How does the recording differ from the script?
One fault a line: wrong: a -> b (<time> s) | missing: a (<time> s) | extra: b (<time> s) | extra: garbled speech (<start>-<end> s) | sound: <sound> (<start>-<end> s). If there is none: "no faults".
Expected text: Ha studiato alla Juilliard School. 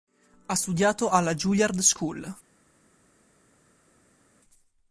no faults